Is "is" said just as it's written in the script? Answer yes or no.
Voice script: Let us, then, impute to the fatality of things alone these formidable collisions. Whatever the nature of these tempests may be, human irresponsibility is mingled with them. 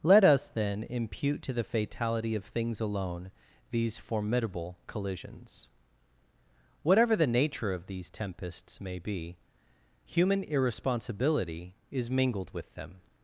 yes